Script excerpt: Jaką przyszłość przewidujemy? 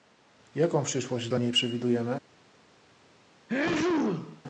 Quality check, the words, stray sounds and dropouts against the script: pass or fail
fail